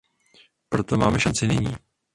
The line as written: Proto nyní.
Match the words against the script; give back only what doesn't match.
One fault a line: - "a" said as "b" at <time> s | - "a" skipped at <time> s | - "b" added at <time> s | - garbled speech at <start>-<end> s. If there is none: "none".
- "máme šanci" added at 1.0 s